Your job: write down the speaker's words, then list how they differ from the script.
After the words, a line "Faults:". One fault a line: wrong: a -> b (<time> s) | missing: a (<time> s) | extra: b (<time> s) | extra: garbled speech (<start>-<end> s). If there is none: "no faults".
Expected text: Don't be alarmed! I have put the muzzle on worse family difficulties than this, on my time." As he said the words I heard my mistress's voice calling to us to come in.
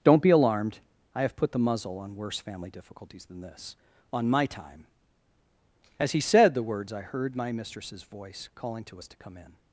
Don't be alarmed! I have put the muzzle on worse family difficulties than this, on my time." As he said the words I heard my mistress's voice calling to us to come in.
Faults:
no faults